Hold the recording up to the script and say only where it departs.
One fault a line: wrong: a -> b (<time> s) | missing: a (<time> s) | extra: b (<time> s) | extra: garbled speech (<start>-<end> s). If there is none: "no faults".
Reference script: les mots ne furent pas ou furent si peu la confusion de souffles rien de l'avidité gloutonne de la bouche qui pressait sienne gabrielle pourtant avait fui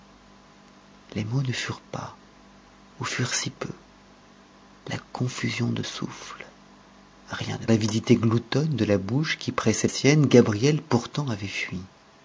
no faults